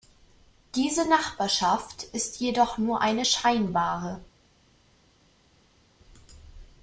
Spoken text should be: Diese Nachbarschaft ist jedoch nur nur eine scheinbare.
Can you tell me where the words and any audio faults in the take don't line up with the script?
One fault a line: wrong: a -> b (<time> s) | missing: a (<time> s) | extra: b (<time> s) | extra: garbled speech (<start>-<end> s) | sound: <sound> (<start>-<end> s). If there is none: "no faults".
missing: nur (3.0 s)